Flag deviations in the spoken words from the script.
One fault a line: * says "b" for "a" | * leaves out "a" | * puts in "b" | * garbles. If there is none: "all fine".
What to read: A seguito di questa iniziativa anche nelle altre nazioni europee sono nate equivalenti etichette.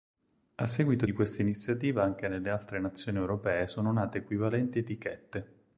all fine